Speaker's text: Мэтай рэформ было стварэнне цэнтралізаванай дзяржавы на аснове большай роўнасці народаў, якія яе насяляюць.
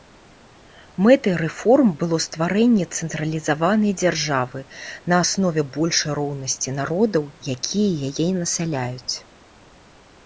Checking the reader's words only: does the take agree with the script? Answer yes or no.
yes